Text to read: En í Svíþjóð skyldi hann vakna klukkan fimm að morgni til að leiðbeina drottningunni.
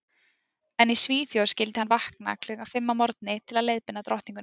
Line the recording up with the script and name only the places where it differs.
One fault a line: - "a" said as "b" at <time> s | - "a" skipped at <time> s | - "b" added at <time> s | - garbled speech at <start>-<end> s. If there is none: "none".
none